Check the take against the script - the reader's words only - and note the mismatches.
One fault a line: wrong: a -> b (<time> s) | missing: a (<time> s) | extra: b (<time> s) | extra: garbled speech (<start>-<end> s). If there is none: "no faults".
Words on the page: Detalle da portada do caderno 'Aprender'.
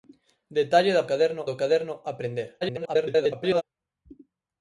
wrong: portada -> caderno (1.1 s)
extra: garbled speech (2.6-3.6 s)